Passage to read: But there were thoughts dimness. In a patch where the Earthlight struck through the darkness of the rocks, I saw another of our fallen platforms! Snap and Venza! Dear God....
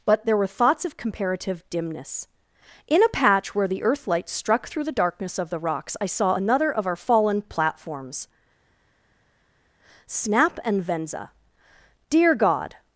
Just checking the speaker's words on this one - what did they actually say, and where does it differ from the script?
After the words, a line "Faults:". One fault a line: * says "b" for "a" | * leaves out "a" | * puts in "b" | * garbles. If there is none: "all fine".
But there were thoughts of comparative dimness. In a patch where the Earthlight struck through the darkness of the rocks, I saw another of our fallen platforms! Snap and Venza! Dear God....
Faults:
* puts in "of comparative"